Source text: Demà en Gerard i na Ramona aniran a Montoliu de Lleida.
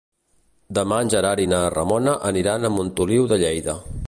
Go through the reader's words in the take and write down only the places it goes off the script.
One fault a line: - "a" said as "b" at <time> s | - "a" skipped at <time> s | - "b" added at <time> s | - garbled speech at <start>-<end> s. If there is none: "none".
none